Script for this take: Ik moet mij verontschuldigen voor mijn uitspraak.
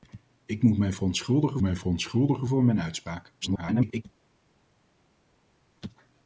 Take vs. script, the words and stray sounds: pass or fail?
fail